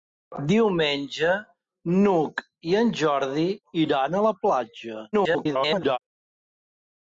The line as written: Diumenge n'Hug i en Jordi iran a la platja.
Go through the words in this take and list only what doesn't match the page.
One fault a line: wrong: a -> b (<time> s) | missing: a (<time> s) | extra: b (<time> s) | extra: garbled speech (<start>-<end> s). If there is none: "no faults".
extra: garbled speech (5.1-6.0 s)